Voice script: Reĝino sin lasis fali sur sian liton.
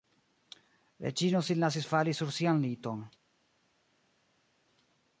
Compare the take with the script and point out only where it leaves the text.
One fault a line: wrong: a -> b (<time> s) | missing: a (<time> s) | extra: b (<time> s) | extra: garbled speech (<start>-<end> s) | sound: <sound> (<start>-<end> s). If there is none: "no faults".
no faults